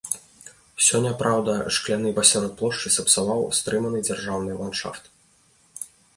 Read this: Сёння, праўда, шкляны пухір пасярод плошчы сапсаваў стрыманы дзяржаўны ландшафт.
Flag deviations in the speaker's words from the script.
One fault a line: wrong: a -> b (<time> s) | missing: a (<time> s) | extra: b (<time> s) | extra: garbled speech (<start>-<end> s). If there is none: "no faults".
missing: пухір (2.1 s)